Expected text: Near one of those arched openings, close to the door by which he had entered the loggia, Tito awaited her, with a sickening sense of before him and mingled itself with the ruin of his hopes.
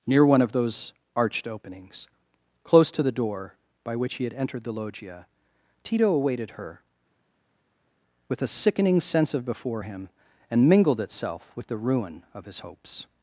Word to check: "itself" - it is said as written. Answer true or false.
true